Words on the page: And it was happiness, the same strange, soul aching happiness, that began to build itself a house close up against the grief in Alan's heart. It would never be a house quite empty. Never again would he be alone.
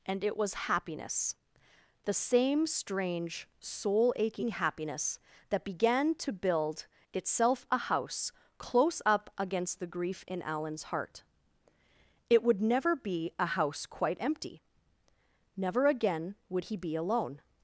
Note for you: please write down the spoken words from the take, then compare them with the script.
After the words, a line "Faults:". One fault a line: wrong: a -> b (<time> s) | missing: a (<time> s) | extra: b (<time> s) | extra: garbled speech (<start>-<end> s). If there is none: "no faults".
And it was happiness, the same strange, soul aching happiness, that began to build itself a house close up against the grief in Alan's heart. It would never be a house quite empty. Never again would he be alone.
Faults:
no faults